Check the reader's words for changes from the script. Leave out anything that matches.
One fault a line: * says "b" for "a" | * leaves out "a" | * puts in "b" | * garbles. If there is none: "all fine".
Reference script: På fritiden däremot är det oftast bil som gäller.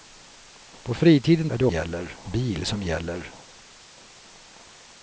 * leaves out "däremot"
* says "gäller" for "oftast"